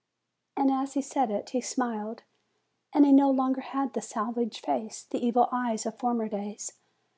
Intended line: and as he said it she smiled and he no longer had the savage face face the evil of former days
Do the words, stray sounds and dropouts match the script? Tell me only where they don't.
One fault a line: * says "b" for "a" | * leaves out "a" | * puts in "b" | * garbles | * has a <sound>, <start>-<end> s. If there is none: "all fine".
* says "he" for "she"
* leaves out "face"
* puts in "eyes"